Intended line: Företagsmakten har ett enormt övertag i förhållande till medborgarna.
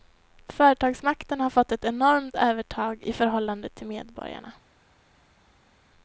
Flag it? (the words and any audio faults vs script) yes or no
yes